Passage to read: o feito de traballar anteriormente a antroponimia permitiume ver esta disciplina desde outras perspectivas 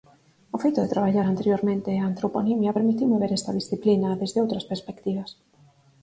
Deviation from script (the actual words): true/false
false